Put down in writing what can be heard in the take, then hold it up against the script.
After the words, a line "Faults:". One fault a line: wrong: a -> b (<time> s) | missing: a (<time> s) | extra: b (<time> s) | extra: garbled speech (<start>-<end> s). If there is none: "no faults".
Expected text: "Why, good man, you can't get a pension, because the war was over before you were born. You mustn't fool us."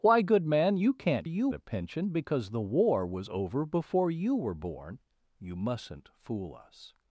"Why, good man, you can't you a pension, because the war was over before you were born. You mustn't fool us."
Faults:
wrong: get -> you (1.2 s)